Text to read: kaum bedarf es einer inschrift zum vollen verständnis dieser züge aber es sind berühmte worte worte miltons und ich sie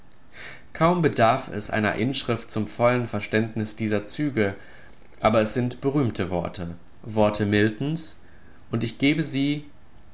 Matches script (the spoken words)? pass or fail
fail